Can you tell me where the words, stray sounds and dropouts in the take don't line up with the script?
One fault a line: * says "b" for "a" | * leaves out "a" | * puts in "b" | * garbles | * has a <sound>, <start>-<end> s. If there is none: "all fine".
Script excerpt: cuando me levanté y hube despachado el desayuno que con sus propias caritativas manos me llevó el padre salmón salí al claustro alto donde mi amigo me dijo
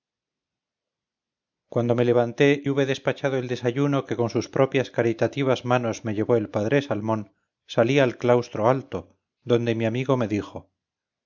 * leaves out "y"